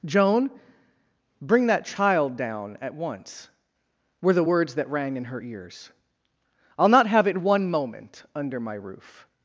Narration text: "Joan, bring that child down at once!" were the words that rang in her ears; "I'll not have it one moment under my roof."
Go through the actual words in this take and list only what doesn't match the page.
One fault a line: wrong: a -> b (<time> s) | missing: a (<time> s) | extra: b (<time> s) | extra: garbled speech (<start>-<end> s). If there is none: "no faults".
no faults